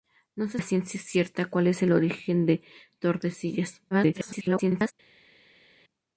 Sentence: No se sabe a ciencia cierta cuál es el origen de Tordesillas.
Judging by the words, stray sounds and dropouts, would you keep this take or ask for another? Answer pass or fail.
fail